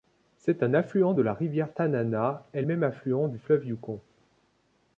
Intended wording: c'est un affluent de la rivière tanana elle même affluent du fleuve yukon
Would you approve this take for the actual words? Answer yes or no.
yes